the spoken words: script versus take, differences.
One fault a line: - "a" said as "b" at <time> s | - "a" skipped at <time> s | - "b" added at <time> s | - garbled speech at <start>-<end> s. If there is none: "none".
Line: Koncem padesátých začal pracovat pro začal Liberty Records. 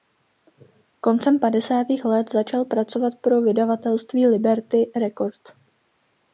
- "let" added at 2.0 s
- "začal" said as "vydavatelství" at 3.4 s